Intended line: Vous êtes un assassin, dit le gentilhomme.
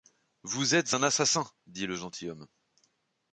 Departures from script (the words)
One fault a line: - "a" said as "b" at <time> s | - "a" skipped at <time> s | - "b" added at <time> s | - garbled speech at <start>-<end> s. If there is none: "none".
none